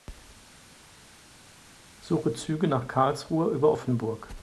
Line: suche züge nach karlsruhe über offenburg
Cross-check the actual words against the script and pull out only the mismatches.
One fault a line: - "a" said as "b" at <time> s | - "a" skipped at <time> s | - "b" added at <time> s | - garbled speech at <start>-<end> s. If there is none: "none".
none